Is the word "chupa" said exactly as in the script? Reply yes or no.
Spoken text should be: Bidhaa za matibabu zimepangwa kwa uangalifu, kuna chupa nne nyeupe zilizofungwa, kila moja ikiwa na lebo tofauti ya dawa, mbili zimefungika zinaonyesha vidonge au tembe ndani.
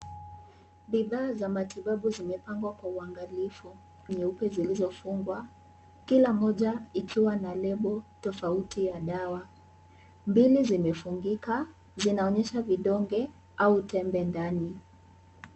no